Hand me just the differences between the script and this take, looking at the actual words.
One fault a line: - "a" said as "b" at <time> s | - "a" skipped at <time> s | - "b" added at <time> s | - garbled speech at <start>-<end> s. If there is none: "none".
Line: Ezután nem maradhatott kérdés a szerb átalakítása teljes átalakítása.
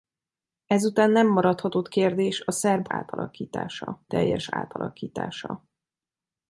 none